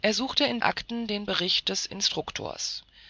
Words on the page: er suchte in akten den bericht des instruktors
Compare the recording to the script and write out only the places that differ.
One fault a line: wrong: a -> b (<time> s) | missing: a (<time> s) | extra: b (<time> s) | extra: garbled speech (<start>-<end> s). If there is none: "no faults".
no faults